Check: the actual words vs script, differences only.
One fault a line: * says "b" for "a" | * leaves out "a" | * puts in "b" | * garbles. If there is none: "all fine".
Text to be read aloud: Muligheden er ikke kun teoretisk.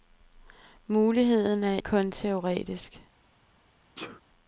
* leaves out "ikke"